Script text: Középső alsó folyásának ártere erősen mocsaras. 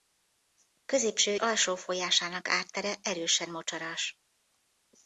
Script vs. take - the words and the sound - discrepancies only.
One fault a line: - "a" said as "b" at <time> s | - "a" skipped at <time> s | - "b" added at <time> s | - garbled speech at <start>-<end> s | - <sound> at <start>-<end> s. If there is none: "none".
none